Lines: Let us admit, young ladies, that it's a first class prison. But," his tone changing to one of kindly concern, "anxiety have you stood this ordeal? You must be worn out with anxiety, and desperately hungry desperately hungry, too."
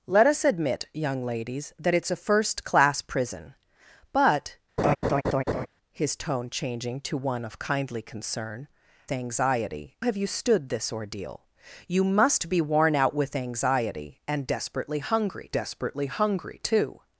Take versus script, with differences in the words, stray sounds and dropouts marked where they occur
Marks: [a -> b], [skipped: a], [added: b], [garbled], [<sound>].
Let us admit, young ladies, that it's a first class prison. But," [laugh] his tone changing to one of kindly concern, "anxiety have you stood this ordeal? You must be worn out with anxiety, and desperately hungry desperately hungry, too."